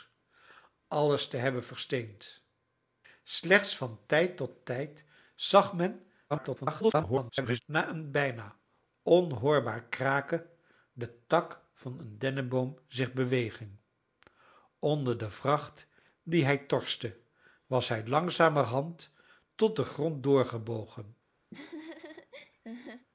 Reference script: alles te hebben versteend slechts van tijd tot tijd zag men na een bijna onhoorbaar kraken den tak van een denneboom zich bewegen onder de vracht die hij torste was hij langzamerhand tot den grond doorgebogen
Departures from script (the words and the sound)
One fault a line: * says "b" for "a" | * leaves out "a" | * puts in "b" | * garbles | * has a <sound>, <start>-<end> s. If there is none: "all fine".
* garbles
* has a laugh, 21.5-23.1 s